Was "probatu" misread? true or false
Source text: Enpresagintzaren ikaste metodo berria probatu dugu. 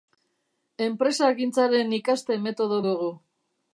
true